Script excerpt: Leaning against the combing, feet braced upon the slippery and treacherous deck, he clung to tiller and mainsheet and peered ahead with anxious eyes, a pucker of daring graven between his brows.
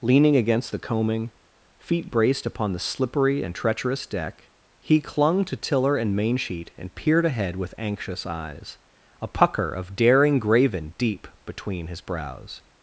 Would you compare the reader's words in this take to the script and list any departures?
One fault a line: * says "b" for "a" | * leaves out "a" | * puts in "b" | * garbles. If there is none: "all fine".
* puts in "deep"